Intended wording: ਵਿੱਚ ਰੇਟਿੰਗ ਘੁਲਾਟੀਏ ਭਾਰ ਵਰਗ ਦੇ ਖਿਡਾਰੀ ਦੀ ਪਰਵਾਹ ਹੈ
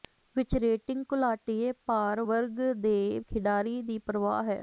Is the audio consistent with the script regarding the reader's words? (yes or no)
yes